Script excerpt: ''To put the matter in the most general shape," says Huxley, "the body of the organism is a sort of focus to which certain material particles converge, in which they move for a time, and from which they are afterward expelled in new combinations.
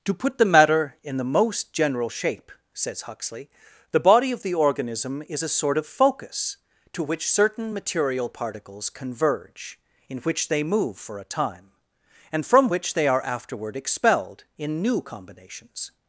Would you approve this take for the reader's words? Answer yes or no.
yes